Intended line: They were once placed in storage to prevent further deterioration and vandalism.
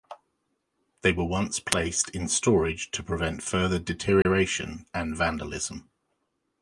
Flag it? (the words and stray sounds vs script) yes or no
yes